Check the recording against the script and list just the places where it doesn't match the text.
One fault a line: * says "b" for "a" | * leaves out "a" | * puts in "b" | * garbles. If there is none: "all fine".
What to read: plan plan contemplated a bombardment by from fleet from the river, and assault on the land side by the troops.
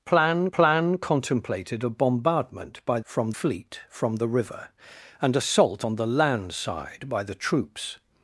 all fine